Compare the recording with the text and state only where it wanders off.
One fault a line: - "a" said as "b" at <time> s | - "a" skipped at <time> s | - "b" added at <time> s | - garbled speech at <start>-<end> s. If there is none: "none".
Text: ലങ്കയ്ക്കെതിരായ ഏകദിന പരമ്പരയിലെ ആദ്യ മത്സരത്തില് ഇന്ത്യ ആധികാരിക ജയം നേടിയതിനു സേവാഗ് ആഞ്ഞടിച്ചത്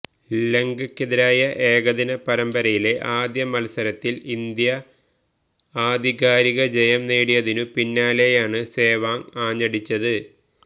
- "പിന്നാലെയാണ്" added at 7.8 s